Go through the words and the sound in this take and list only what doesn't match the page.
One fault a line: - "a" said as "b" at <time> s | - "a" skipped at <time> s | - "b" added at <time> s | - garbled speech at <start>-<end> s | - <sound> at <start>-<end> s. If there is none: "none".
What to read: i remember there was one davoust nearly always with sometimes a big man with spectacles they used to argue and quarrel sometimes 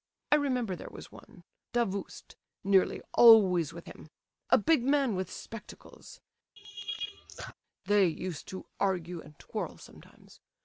- "sometimes" said as "him" at 3.9 s
- laugh at 6.6-7.5 s